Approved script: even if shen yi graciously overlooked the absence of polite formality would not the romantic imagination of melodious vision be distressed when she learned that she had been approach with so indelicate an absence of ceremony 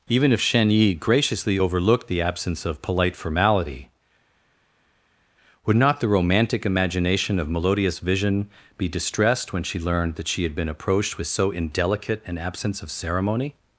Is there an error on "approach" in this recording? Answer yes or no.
yes